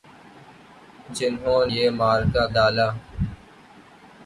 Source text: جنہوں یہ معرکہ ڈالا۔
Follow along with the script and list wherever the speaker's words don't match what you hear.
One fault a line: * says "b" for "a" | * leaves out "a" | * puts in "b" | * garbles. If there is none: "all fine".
all fine